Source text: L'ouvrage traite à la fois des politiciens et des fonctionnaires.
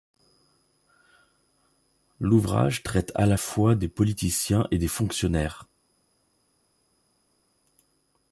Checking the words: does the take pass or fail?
pass